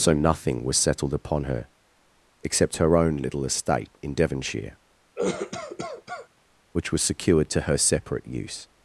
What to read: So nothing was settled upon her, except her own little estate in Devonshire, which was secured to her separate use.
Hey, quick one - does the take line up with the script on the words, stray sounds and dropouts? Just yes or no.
no